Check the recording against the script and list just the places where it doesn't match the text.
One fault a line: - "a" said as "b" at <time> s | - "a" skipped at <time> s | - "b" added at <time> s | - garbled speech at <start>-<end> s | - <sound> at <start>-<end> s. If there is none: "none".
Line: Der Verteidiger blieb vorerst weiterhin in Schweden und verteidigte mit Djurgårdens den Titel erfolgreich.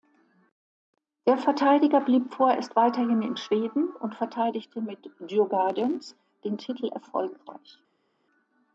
none